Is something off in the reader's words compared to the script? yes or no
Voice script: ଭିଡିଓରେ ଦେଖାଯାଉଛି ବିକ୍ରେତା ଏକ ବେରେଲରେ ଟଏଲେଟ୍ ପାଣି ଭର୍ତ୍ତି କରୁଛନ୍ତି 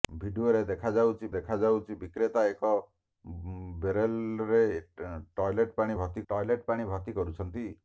yes